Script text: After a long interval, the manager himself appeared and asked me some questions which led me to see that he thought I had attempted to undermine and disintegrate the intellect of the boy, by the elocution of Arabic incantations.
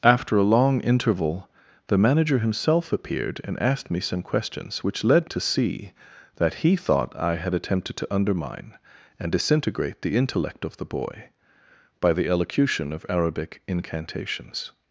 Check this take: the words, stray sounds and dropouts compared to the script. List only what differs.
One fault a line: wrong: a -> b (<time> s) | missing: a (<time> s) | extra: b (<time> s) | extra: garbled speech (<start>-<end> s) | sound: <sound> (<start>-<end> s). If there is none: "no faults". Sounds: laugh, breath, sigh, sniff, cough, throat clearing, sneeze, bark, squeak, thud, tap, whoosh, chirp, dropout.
missing: me (5.3 s)